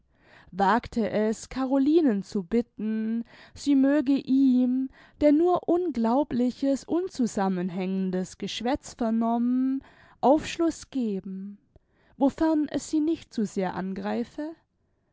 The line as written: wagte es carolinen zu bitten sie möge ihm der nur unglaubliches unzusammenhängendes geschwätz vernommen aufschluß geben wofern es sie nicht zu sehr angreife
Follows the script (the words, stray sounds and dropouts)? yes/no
yes